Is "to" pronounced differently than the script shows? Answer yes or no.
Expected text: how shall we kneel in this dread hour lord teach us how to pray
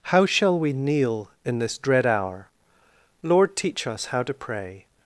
no